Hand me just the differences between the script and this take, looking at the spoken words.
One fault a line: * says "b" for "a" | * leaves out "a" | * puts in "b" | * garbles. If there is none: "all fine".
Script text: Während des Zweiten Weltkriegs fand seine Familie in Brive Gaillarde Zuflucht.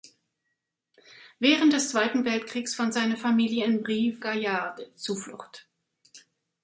all fine